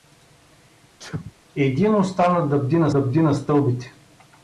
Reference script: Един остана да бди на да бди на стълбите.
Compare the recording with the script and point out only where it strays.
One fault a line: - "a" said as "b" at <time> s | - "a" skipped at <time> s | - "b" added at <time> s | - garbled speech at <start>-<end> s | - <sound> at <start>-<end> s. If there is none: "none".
- sneeze at 1.0-1.3 s